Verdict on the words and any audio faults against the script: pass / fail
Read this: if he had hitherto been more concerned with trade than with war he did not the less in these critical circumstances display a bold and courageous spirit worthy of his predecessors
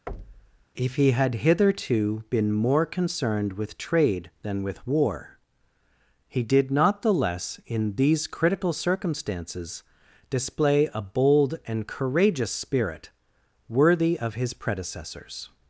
fail